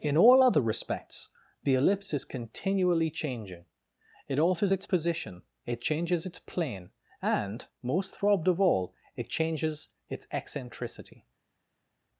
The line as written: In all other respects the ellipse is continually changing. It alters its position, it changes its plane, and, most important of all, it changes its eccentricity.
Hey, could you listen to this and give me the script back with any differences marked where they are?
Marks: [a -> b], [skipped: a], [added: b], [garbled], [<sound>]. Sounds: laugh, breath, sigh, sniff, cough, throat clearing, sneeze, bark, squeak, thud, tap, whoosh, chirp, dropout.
In all other respects the ellipse is continually changing. It alters its position, it changes its plane, and, most [important -> throbbed] of all, it changes its eccentricity.